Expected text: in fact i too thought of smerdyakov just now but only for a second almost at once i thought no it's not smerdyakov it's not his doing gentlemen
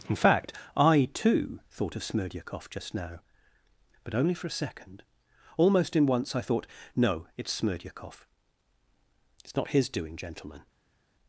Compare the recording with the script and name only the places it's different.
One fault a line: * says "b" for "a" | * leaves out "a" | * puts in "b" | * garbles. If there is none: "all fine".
* says "in" for "at"
* leaves out "not"